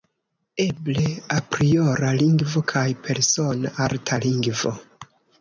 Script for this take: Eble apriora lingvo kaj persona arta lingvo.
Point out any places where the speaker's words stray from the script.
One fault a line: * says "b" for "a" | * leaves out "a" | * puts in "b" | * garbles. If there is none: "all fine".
all fine